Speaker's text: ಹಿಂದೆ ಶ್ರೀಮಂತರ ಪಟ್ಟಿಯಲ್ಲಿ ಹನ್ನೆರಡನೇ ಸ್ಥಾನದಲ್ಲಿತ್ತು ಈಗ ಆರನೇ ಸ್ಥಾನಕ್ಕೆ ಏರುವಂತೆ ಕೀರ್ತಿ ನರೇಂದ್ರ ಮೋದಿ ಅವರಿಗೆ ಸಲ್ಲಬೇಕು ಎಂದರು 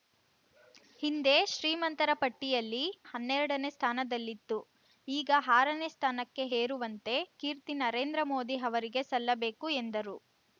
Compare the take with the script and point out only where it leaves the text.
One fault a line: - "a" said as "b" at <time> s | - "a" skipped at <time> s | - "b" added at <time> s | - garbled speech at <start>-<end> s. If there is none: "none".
none